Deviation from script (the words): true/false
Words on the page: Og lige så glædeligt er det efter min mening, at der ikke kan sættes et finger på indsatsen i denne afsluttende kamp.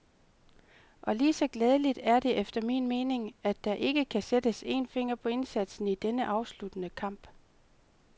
true